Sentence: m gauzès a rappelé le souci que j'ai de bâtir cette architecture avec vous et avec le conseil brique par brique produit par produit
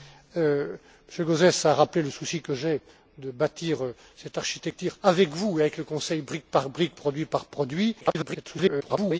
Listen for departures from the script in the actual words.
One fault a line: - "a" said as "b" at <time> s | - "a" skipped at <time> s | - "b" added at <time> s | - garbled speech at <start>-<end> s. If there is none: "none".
- garbled speech at 8.0-9.2 s